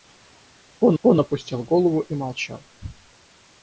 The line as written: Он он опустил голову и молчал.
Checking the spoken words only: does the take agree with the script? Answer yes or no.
yes